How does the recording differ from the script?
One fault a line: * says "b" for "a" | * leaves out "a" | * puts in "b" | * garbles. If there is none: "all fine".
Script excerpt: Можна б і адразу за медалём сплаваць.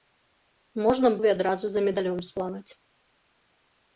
all fine